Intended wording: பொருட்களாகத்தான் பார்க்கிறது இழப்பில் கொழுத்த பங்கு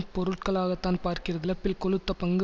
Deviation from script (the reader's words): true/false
false